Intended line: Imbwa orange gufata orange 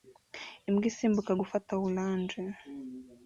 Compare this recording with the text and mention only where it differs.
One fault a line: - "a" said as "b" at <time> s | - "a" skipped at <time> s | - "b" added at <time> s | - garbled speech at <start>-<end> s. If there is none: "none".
- "orange" said as "isimbuka" at 0.9 s